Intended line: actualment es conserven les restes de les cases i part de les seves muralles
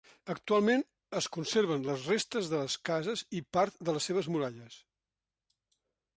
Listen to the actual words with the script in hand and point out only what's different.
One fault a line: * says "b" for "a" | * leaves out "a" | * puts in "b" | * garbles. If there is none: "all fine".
all fine